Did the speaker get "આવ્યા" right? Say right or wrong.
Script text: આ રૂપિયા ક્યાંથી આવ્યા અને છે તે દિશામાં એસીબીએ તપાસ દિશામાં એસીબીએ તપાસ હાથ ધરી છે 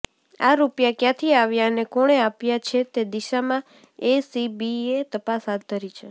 right